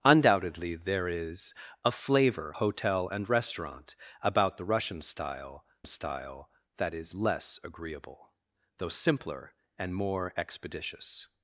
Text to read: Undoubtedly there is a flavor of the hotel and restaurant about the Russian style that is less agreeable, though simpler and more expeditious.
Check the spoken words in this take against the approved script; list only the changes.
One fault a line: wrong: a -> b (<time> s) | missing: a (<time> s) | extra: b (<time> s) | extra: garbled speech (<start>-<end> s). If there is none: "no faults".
missing: of the (2.5 s)
extra: style (5.8 s)